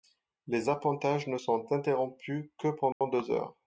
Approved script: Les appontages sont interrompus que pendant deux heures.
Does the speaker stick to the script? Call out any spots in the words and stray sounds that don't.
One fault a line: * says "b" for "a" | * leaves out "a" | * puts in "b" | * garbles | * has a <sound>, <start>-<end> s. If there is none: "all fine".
* puts in "ne"
* has a dropout, 2.9-3.0 s